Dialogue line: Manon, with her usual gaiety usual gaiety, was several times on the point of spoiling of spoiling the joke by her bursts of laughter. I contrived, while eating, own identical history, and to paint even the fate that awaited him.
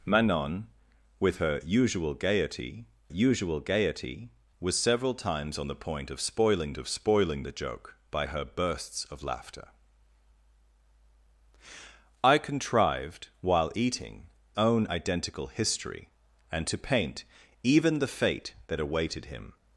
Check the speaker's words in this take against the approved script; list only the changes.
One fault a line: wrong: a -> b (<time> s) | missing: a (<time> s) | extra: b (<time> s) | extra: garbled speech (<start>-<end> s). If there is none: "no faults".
no faults